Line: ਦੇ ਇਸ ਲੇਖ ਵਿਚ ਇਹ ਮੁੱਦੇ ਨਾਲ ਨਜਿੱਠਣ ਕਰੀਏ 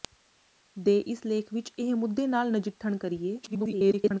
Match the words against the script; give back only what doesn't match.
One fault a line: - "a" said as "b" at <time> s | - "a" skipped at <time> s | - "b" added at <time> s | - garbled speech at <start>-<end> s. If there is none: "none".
- garbled speech at 3.4-4.2 s